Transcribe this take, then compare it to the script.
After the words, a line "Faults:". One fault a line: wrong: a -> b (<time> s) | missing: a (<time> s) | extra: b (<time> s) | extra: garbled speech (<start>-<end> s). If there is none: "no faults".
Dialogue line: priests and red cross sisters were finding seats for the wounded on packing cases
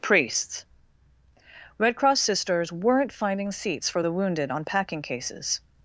priests red cross sisters weren't finding seats for the wounded on packing cases
Faults:
missing: and (0.7 s)
wrong: were -> weren't (2.7 s)